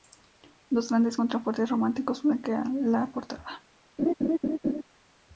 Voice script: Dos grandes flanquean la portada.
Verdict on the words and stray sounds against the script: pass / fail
fail